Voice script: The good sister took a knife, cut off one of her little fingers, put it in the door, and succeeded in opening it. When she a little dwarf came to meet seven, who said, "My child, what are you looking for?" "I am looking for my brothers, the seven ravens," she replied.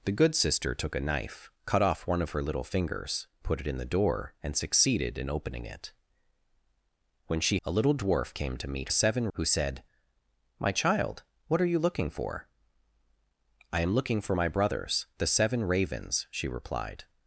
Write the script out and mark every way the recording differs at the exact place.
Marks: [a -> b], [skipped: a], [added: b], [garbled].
The good sister took a knife, cut off one of her little fingers, put it in the door, and succeeded in opening it. When she a little dwarf came to meet seven, who said, "My child, what are you looking for?" "I am looking for my brothers, the seven ravens," she replied.